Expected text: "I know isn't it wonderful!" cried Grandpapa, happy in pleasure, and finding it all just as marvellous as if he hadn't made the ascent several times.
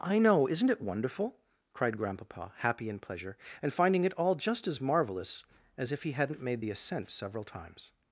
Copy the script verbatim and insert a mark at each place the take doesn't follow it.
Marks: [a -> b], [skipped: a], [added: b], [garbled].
"I know isn't it wonderful!" cried Grandpapa, happy in pleasure, and finding it all just as marvellous as if he hadn't made the ascent several times.